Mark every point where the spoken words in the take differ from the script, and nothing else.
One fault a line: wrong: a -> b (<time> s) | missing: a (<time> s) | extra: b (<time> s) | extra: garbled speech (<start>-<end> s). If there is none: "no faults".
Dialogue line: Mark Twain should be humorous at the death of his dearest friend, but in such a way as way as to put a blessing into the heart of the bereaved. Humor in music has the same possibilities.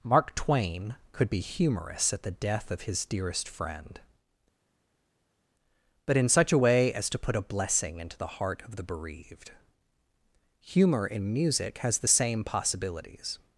wrong: should -> could (1.1 s)
missing: way as (7.1 s)